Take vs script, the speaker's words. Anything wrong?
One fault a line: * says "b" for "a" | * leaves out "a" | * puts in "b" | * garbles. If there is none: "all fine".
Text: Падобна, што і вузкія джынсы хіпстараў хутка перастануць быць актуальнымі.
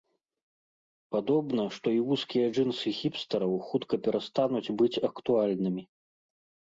all fine